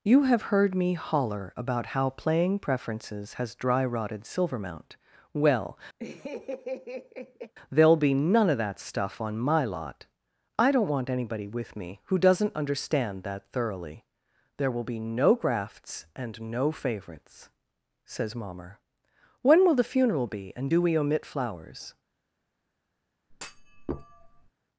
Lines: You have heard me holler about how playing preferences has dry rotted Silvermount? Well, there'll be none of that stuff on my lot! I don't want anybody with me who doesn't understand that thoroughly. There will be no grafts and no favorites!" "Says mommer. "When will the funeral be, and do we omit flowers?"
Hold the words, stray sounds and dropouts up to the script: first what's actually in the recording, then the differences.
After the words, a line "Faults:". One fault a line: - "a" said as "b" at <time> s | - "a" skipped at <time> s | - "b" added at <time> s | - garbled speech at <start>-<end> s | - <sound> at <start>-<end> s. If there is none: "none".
You have heard me holler about how playing preferences has dry rotted Silvermount? Well, there'll be none of that stuff on my lot! I don't want anybody with me who doesn't understand that thoroughly. There will be no grafts and no favorites!" "Says mommer. "When will the funeral be, and do we omit flowers?"
Faults:
- laugh at 6.0-7.5 s
- thud at 23.3-24.5 s